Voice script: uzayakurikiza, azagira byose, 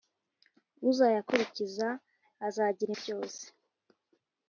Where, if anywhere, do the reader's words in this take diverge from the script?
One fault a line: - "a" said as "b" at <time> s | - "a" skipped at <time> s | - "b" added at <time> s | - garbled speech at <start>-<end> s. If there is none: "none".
none